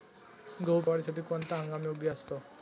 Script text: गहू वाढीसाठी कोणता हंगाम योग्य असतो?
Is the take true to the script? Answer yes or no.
yes